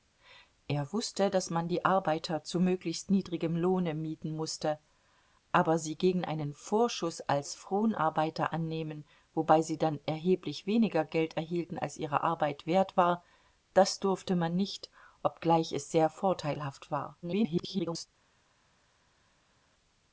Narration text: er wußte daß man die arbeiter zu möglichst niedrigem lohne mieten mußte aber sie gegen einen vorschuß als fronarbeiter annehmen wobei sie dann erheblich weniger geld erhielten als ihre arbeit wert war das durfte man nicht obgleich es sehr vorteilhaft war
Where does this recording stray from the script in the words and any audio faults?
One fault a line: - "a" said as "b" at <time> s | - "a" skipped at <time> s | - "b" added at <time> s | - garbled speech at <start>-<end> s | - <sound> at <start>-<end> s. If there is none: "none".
- garbled speech at 17.2-18.1 s